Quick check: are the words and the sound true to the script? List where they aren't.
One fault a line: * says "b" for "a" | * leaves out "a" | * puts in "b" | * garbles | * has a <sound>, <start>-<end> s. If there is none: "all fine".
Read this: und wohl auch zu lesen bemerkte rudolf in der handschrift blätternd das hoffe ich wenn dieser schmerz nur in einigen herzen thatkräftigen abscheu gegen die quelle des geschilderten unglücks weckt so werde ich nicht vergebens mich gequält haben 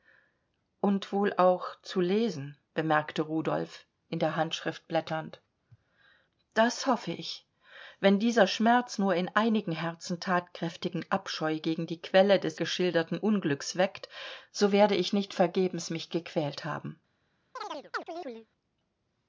* has a chirp, 17.6-18.5 s